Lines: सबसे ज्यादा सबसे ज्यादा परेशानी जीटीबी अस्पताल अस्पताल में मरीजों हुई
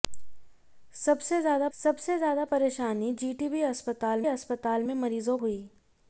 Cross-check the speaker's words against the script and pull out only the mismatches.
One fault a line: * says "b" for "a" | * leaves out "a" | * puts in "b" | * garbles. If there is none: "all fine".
all fine